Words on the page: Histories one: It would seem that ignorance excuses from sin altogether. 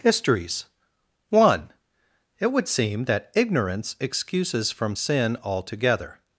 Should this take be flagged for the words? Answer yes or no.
no